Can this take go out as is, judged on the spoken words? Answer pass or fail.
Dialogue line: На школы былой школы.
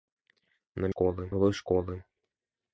pass